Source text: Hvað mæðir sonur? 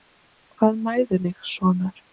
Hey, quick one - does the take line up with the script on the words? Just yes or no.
no